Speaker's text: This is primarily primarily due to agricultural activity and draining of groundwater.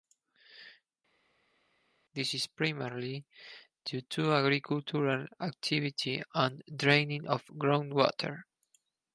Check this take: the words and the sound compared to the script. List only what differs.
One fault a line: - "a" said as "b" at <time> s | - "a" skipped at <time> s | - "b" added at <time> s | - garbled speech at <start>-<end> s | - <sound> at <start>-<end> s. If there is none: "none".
- "primarily" skipped at 3.2 s